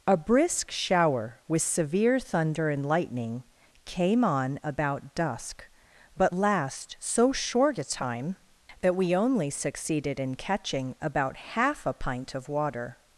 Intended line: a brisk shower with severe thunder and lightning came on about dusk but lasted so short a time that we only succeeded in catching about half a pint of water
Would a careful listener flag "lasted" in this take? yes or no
yes